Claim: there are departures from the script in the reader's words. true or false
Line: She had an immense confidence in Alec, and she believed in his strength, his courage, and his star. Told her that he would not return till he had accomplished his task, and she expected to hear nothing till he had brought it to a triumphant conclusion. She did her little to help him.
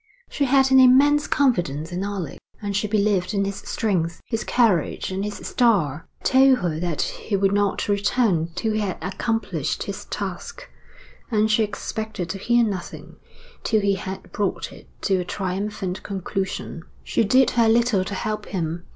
false